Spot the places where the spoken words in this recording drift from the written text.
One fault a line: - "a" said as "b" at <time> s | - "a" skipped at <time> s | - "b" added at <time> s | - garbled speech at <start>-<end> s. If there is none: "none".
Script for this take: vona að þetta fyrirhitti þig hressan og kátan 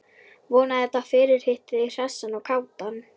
none